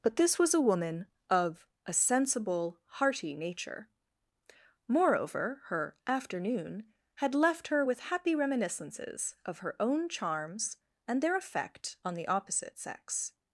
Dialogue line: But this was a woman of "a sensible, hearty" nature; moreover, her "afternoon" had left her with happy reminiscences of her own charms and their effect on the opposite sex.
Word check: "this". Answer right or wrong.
right